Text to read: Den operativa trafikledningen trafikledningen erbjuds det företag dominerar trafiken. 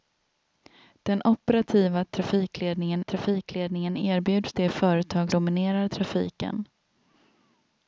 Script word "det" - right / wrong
right